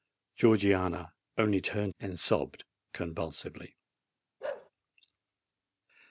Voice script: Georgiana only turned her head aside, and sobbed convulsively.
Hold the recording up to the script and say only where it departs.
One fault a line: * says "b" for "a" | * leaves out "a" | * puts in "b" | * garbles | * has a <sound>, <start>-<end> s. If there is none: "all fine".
* leaves out "her head aside"
* has a bark, 4.4-4.7 s